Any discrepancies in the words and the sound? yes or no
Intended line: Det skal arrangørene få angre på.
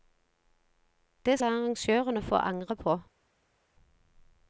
yes